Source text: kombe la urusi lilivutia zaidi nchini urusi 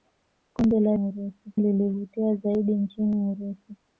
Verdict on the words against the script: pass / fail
pass